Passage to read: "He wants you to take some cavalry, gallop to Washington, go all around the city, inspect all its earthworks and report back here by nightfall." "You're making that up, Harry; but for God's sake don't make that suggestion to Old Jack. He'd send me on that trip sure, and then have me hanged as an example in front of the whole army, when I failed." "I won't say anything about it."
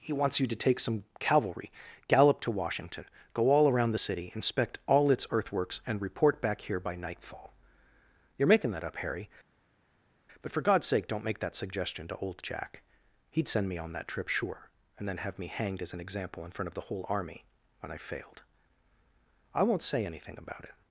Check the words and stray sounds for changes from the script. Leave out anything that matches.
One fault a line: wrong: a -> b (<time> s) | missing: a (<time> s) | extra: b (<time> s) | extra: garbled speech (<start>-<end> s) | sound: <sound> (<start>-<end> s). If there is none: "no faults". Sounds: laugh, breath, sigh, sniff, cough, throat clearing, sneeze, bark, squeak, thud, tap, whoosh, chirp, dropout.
no faults